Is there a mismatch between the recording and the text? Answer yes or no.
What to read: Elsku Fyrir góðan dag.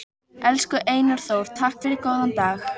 yes